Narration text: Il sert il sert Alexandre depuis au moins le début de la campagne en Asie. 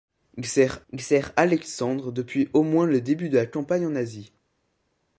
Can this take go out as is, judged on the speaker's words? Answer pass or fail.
pass